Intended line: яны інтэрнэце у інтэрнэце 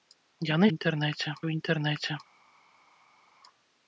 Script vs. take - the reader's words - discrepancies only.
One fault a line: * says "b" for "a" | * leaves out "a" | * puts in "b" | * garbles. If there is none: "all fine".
all fine